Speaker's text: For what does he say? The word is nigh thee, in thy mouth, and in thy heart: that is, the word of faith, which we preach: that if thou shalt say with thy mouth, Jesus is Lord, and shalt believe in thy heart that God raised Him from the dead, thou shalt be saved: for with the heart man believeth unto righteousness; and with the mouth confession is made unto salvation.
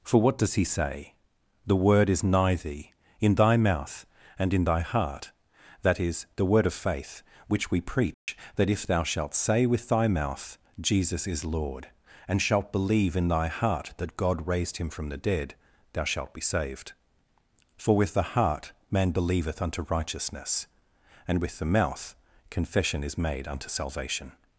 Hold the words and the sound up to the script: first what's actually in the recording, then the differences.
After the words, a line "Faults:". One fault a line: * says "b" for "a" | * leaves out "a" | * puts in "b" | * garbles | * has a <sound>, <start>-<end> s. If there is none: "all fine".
For what does he say? The word is nigh thee, in thy mouth, and in thy heart: that is, the word of faith, which we preach: that if thou shalt say with thy mouth, Jesus is Lord, and shalt believe in thy heart that God raised Him from the dead, thou shalt be saved: for with the heart man believeth unto righteousness; and with the mouth confession is made unto salvation.
Faults:
* has a dropout, 8.1-8.3 s